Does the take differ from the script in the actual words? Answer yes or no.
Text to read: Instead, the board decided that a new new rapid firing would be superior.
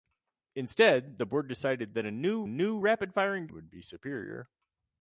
no